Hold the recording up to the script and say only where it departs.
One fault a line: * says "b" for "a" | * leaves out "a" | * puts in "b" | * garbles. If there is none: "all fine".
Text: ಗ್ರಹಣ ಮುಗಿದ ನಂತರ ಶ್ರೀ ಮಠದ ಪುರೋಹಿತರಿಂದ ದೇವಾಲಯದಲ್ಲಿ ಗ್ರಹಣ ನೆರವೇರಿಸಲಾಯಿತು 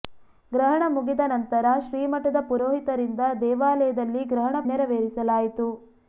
all fine